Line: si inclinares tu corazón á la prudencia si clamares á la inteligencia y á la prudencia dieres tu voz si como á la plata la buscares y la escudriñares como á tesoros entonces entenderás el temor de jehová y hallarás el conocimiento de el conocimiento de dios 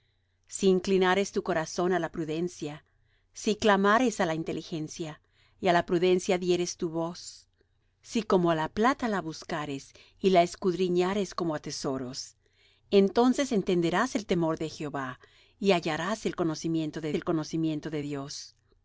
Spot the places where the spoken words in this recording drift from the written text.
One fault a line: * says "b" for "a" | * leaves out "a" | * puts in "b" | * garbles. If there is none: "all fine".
all fine